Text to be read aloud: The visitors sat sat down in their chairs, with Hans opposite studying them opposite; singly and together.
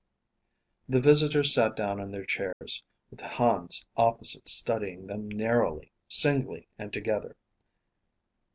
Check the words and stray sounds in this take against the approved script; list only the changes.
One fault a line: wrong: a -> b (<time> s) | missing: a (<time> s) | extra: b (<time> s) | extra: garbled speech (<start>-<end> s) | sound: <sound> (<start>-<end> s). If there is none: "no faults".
missing: sat (1.8 s)
sound: dropout (2.5-2.6 s)
wrong: opposite -> narrowly (5.3 s)